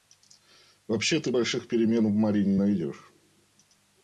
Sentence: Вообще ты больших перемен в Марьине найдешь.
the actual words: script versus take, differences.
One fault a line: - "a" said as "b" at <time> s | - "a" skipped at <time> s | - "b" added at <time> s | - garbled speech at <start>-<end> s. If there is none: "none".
none